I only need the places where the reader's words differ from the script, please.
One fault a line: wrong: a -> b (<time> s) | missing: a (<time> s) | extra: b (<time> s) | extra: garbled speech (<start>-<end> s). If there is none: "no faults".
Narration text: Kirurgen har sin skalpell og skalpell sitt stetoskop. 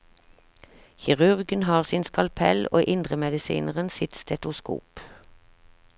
wrong: skalpell -> indremedisineren (2.9 s)